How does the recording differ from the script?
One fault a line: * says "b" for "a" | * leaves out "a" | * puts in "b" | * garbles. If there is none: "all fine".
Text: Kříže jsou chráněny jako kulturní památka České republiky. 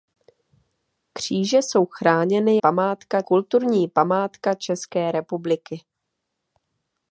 * says "památka" for "jako"